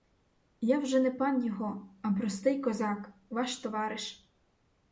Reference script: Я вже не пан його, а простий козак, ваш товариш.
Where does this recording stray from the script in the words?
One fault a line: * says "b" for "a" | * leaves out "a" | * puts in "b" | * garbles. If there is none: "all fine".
all fine